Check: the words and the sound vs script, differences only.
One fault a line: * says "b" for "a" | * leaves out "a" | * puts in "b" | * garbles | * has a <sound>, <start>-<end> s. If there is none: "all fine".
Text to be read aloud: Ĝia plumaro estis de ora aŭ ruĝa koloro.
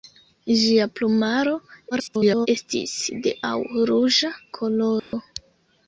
* garbles
* leaves out "ora"
* has a dropout, 5.0-5.1 s